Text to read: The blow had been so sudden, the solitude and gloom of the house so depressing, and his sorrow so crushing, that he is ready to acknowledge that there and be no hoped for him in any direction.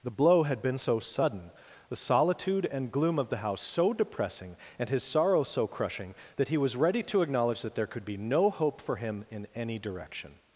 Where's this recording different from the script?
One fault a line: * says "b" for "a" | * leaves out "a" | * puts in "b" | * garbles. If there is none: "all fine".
* says "was" for "is"
* says "could" for "and"
* says "hope" for "hoped"